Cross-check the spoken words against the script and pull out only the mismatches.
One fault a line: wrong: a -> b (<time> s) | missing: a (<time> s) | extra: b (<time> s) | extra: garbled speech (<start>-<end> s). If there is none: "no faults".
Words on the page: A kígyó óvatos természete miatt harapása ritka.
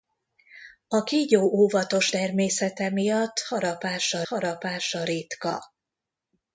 extra: harapása (4.3 s)